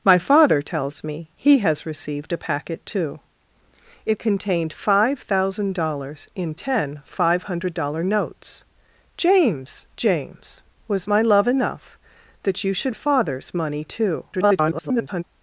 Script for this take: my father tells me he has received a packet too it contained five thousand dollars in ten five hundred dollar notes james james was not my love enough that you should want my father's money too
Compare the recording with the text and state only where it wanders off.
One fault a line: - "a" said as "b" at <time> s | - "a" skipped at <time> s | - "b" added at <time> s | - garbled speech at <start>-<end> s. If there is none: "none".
- "not" skipped at 11.1 s
- "want my" skipped at 12.9 s
- garbled speech at 14.3-15.2 s